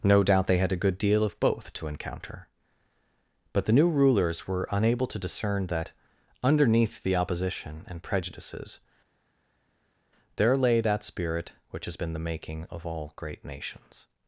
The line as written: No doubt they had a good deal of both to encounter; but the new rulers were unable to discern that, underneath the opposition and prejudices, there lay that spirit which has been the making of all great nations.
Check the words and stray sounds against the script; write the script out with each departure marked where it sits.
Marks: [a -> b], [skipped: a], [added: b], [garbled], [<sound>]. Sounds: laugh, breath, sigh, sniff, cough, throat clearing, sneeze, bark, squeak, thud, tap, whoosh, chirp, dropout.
No doubt they had a good deal of both to encounter; but the new rulers were unable to discern that, underneath the opposition and prejudices, there lay that spirit which has been the making of all great nations.